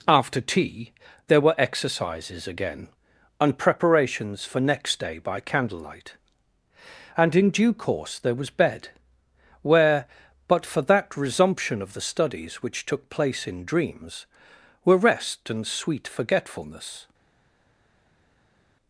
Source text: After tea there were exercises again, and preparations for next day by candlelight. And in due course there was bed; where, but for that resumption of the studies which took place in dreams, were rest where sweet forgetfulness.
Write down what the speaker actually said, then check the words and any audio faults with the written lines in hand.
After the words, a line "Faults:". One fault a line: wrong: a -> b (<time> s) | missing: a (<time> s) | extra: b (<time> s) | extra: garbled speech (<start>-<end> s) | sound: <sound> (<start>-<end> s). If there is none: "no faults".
After tea there were exercises again, and preparations for next day by candlelight. And in due course there was bed; where, but for that resumption of the studies which took place in dreams, were rest and sweet forgetfulness.
Faults:
wrong: where -> and (15.5 s)